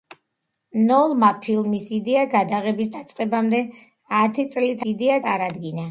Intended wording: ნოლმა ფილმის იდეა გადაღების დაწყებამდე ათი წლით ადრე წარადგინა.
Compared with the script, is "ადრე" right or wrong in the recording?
wrong